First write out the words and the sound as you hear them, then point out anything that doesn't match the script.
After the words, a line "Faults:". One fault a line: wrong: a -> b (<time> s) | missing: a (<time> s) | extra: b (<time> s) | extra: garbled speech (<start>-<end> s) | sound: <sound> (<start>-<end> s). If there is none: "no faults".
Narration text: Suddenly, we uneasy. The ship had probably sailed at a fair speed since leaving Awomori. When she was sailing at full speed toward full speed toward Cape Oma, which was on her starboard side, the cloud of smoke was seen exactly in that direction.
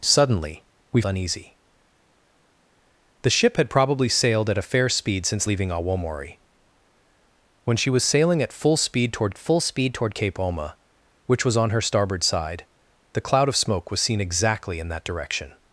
Suddenly, we uneasy. The ship had probably sailed at a fair speed since leaving Awomori. When she was sailing at full speed toward full speed toward Cape Oma, which was on her starboard side, the cloud of smoke was seen exactly in that direction.
Faults:
no faults